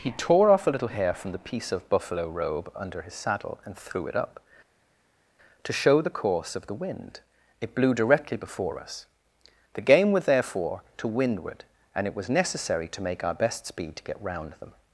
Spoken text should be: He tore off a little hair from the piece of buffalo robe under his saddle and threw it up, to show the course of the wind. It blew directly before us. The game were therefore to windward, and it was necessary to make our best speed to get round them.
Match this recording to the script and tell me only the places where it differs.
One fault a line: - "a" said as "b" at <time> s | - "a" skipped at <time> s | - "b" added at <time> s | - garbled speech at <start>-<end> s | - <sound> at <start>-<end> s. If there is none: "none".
- "were" said as "was" at 10.1 s